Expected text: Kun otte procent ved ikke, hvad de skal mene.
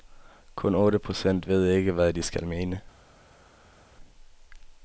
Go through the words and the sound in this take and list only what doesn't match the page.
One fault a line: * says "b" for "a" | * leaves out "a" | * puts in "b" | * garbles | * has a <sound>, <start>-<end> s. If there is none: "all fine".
all fine